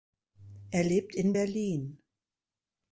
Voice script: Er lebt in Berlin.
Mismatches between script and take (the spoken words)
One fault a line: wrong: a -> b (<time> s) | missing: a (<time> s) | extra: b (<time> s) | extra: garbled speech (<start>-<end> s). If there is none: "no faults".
no faults